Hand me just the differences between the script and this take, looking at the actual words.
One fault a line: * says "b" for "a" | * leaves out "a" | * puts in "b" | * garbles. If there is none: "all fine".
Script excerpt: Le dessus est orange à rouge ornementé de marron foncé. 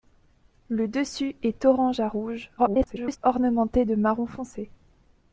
* garbles